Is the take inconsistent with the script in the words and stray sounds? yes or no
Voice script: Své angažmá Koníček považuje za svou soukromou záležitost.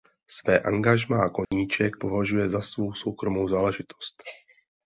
yes